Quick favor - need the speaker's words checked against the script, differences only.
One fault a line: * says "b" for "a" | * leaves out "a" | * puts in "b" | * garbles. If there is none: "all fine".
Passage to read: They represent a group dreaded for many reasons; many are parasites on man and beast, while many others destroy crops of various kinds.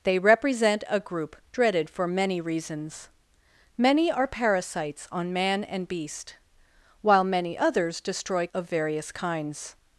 * leaves out "crops"